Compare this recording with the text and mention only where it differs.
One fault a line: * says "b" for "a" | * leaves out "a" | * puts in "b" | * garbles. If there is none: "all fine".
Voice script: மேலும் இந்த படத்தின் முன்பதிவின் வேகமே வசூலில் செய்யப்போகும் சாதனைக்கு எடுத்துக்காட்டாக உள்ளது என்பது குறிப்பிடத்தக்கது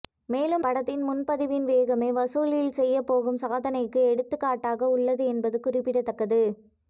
* leaves out "இந்த"